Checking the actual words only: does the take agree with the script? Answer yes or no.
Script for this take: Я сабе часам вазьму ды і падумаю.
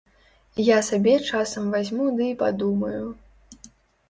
yes